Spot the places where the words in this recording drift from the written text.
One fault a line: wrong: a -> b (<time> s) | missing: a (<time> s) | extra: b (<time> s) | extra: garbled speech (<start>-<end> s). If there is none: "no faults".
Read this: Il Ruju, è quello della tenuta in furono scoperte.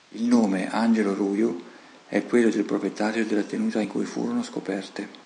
extra: nome Angelo (0.2 s)
extra: del proprietario (2.5 s)
extra: cui (3.9 s)